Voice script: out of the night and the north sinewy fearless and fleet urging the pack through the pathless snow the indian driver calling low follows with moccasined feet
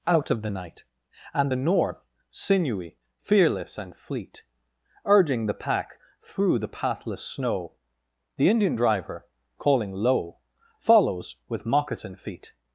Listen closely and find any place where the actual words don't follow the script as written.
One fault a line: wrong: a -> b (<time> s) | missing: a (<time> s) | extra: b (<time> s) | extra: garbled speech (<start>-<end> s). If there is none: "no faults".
wrong: moccasined -> moccasin (11.7 s)